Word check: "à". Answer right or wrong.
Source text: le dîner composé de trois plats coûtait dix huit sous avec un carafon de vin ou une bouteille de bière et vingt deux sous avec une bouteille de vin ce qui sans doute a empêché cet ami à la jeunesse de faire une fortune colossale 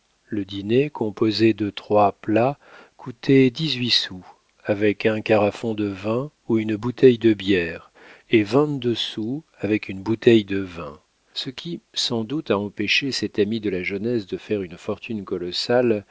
wrong